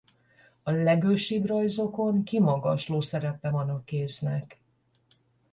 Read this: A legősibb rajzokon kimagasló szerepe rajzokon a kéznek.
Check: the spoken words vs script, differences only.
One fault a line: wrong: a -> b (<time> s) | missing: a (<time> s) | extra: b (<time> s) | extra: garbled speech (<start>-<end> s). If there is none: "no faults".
wrong: rajzokon -> van (3.5 s)